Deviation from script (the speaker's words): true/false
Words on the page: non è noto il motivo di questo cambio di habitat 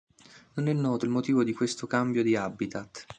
false